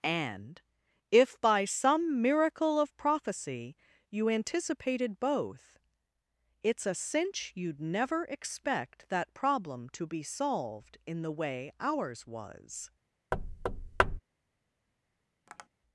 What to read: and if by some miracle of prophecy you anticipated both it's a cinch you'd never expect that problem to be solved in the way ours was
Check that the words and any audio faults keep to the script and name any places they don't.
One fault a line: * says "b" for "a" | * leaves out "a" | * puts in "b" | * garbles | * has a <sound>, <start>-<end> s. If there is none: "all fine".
* has a thud, 13.3-14.2 s
* has a tap, 15.5-15.7 s